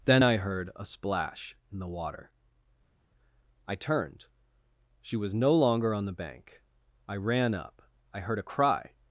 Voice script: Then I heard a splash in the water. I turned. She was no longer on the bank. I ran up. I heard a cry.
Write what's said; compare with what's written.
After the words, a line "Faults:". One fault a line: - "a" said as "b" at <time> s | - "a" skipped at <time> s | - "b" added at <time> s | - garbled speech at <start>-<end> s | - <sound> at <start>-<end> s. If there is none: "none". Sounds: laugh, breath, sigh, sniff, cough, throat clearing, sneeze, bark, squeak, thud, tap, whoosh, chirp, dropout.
Then I heard a splash in the water. I turned. She was no longer on the bank. I ran up. I heard a cry.
Faults:
none